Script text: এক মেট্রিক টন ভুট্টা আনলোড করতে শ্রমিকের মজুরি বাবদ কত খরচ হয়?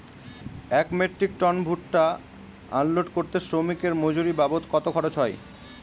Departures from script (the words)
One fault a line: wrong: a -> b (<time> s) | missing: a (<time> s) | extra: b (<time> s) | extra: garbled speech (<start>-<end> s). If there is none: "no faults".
no faults